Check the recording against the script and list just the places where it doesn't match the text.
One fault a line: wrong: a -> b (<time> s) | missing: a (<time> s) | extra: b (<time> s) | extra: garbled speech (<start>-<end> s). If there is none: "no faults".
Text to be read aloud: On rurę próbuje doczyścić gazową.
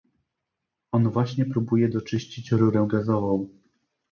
wrong: rurę -> właśnie (1.1 s)
extra: rurę (2.5 s)